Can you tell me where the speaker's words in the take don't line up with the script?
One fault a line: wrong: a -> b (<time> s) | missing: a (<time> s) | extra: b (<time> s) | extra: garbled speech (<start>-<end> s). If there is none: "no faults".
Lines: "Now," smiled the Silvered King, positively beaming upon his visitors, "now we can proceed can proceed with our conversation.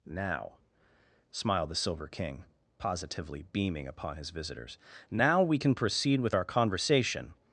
wrong: Silvered -> Silver (1.7 s)
missing: can proceed (6.2 s)